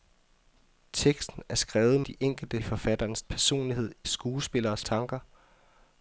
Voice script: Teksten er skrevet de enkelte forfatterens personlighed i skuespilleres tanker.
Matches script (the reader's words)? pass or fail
pass